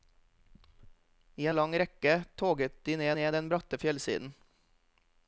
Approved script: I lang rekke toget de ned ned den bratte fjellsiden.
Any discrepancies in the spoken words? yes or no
no